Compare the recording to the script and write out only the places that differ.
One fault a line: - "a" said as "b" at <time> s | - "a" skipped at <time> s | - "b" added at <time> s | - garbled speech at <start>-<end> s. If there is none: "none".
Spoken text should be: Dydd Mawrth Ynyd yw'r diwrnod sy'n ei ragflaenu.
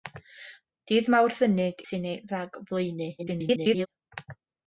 - "yw'r diwrnod" skipped at 1.8 s
- garbled speech at 3.2-3.9 s